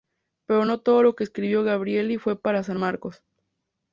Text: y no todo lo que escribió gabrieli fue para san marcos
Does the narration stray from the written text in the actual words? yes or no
yes